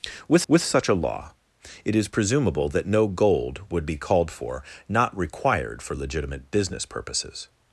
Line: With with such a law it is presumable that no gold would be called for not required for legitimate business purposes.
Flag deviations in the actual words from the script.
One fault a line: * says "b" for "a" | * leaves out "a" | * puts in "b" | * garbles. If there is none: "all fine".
all fine